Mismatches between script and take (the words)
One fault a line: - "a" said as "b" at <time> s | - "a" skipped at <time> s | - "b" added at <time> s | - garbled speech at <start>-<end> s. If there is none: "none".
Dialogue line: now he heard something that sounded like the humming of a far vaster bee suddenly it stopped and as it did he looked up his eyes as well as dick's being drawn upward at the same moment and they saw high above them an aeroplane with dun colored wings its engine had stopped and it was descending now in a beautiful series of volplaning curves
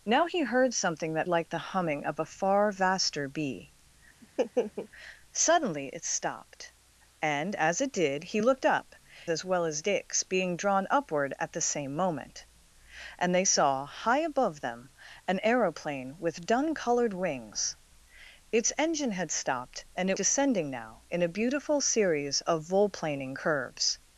- "sounded" skipped at 1.3 s
- "his eyes" skipped at 9.0 s
- "was" skipped at 20.2 s